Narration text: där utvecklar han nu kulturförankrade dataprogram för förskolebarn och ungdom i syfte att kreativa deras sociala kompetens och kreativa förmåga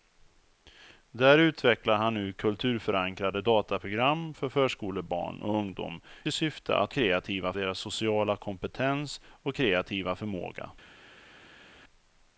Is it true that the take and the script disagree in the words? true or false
false